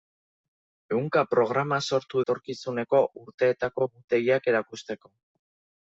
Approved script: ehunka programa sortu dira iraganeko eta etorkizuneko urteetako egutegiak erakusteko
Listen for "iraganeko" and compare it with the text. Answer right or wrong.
wrong